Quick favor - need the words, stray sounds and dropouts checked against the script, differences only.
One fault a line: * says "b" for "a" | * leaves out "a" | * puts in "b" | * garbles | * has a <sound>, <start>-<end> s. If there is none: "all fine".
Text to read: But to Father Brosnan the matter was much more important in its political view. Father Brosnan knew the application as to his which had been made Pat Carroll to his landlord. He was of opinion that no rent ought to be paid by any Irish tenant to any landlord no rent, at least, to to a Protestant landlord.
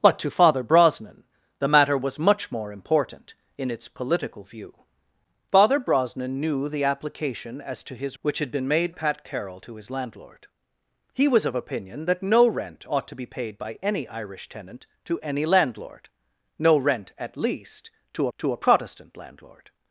all fine